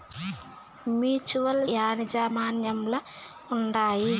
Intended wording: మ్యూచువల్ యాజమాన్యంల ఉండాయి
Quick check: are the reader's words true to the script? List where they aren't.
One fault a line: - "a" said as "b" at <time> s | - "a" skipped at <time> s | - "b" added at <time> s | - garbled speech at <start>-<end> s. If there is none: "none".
none